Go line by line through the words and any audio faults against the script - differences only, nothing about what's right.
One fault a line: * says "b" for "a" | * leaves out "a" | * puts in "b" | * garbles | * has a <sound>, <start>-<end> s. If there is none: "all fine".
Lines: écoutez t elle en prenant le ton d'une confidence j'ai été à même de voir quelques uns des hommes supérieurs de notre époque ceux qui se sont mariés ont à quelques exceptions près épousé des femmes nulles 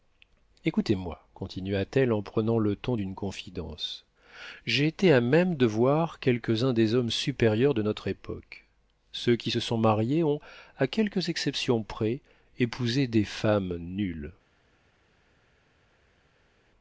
* puts in "moi continua"